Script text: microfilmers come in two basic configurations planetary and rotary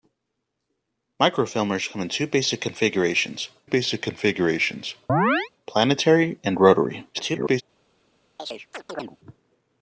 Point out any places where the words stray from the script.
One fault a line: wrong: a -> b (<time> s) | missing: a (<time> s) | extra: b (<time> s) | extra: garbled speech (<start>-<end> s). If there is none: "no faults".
extra: basic configurations (3.6 s)
extra: garbled speech (7.1-7.6 s)